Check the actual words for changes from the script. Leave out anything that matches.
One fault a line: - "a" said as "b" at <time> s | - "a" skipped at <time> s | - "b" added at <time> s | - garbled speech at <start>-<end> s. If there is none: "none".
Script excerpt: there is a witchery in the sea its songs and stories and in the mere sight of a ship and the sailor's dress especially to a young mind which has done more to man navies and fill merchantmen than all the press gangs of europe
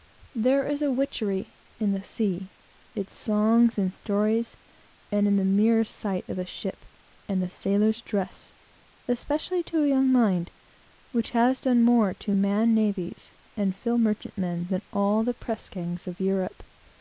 none